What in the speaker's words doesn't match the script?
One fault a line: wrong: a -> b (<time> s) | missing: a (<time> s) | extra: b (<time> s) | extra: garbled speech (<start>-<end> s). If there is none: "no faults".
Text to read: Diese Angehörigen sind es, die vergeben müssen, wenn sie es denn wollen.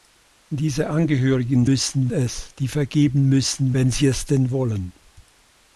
wrong: sind -> müssen (1.6 s)